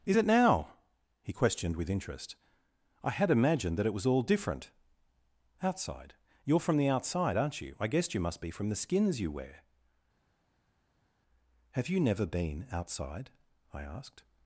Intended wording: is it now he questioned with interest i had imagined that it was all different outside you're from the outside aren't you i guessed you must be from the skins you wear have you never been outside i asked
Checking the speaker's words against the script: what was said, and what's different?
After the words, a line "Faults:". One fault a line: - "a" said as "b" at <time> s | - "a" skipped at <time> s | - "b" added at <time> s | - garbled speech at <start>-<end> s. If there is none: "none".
is it now he questioned with interest i had imagined that it was all different outside you're from the outside aren't you i guessed you must be from the skins you wear have you never been outside i asked
Faults:
none